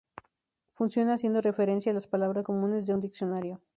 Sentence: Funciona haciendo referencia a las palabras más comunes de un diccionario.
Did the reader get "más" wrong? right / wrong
wrong